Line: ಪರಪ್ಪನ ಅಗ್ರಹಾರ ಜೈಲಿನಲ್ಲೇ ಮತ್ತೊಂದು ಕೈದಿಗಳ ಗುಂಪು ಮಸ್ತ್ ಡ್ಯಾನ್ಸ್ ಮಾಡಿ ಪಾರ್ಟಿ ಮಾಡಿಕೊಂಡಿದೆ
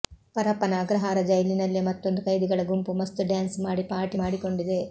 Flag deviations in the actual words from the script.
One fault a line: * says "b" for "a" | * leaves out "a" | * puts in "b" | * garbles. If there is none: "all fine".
all fine